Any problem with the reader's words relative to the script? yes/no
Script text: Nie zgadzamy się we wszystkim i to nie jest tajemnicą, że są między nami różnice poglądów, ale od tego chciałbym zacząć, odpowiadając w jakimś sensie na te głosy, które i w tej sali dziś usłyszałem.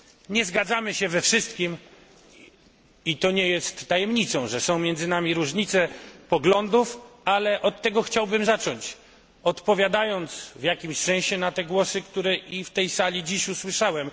no